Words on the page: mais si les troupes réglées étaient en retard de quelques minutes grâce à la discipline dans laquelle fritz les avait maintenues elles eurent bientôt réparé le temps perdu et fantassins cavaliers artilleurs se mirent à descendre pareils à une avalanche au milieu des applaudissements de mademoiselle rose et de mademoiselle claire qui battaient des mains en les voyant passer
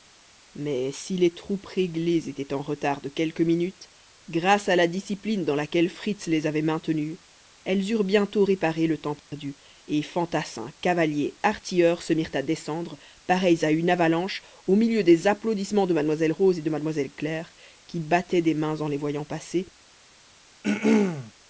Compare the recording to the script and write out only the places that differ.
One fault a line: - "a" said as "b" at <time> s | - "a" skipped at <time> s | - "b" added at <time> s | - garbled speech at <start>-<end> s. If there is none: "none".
none